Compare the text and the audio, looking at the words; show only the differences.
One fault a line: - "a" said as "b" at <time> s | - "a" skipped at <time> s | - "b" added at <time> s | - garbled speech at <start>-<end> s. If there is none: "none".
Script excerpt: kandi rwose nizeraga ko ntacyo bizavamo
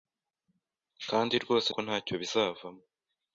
- "nizeraga" skipped at 1.7 s